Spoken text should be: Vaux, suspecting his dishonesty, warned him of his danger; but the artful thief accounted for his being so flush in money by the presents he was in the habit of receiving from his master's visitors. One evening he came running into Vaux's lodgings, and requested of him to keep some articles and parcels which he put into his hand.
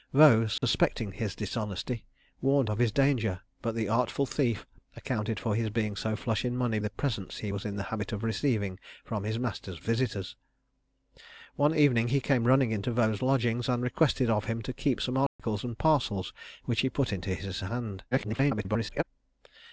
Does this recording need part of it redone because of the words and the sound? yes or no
yes